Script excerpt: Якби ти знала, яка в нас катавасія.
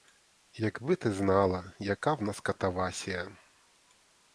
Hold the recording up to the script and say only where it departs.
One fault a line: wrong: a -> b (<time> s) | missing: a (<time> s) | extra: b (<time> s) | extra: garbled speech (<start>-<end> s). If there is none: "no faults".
no faults